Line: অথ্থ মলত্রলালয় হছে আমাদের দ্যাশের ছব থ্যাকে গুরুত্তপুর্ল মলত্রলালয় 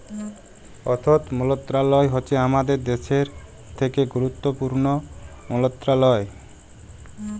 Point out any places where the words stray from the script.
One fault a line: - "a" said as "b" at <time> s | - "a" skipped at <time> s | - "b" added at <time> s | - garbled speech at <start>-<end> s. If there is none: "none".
- "ছব" skipped at 3.3 s